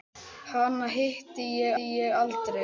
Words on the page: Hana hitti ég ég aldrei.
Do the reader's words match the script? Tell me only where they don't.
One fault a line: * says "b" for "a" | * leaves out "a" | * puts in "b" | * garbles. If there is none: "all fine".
all fine